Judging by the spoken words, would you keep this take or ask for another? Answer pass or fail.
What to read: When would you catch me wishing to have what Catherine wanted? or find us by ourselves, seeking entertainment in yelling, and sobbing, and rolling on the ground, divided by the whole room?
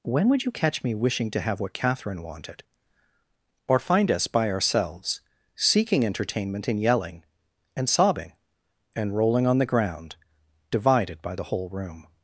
pass